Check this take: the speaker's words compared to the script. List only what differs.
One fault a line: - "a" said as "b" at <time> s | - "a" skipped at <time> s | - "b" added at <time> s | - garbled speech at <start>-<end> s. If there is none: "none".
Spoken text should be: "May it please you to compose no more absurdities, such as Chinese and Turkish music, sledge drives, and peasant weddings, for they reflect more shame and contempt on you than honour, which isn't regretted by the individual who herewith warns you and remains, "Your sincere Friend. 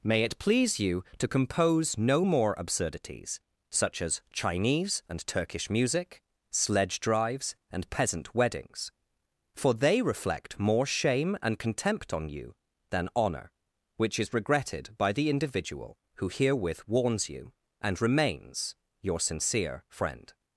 - "isn't" said as "is" at 14.2 s